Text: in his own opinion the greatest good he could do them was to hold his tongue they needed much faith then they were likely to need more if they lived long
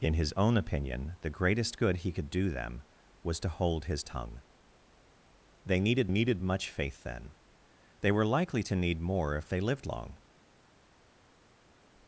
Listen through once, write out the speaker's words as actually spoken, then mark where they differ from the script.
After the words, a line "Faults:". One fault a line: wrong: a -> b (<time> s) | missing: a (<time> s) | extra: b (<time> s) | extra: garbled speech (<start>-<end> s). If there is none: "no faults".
in his own opinion the greatest good he could do them was to hold his tongue they needed needed much faith then they were likely to need more if they lived long
Faults:
extra: needed (6.1 s)